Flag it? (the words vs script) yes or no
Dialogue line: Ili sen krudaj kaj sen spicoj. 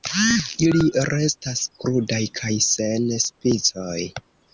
yes